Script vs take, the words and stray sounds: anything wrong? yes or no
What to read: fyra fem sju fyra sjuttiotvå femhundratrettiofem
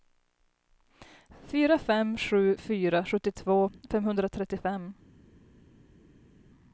no